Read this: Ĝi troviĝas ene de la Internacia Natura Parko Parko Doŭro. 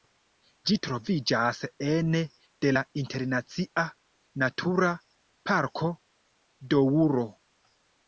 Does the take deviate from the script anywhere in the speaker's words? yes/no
yes